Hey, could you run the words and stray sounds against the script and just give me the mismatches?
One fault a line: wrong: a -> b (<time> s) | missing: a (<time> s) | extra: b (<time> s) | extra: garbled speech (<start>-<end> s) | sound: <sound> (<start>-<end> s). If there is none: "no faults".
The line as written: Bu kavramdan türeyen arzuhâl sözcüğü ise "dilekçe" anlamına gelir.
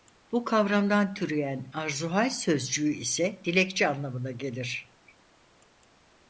no faults